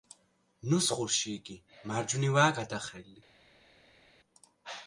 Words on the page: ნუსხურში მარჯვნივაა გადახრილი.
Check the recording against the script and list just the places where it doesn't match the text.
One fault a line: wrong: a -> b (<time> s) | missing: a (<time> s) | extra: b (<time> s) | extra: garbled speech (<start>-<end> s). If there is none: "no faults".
extra: იგი (1.4 s)